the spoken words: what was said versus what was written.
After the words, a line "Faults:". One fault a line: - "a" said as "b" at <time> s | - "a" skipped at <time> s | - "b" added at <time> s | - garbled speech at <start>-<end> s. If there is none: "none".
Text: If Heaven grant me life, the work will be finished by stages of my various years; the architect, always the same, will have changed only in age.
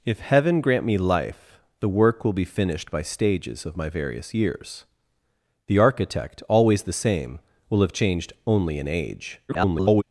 If Heaven grant me life, the work will be finished by stages of my various years; the architect, always the same, will have changed only in age. [garbled]
Faults:
- garbled speech at 9.5-10.0 s